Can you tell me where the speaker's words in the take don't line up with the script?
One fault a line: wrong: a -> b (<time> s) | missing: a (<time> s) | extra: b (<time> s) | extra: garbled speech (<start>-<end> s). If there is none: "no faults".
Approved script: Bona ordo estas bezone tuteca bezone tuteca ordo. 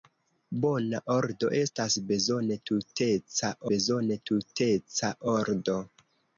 no faults